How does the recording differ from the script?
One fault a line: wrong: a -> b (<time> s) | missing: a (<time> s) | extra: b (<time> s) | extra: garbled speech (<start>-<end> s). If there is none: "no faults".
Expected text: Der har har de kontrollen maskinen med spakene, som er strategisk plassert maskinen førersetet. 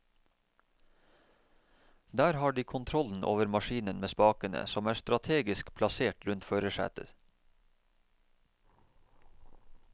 missing: har (2.5 s)
extra: over (3.2 s)
wrong: maskinen -> rundt (6.3 s)